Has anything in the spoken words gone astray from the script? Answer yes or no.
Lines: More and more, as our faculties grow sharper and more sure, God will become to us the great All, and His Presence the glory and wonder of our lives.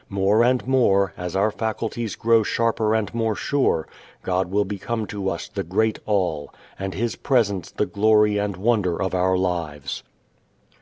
no